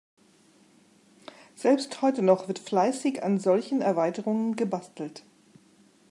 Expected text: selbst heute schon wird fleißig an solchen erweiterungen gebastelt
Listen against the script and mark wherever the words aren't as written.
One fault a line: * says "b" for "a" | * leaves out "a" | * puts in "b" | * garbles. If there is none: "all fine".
* says "noch" for "schon"